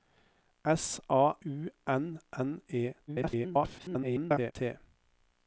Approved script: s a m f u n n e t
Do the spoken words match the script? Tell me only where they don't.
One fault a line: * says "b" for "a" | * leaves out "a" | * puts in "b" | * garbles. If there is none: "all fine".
* leaves out "m f"
* garbles